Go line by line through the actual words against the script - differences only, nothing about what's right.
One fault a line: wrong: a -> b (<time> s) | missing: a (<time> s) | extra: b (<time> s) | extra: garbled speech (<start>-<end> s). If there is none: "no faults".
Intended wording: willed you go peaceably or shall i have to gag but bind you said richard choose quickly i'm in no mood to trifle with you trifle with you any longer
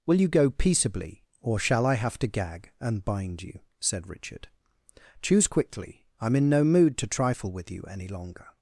wrong: willed -> will (0.1 s)
wrong: but -> and (2.8 s)
missing: trifle with you (7.8 s)